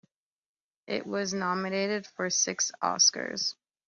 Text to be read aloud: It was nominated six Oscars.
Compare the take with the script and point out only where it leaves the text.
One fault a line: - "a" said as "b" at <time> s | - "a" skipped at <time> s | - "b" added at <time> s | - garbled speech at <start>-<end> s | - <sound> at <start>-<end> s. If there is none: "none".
- "for" added at 2.1 s